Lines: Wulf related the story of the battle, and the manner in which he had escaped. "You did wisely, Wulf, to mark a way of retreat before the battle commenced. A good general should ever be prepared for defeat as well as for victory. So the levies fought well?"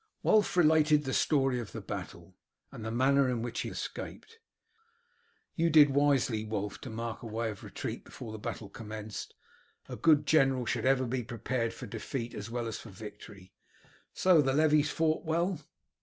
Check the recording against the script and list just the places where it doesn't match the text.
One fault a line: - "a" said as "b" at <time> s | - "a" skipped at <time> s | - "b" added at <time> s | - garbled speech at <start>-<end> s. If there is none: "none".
- "had" skipped at 3.7 s